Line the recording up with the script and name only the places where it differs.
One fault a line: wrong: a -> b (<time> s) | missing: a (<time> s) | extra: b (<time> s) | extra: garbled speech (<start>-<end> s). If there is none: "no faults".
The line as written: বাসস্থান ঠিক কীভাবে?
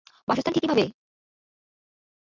no faults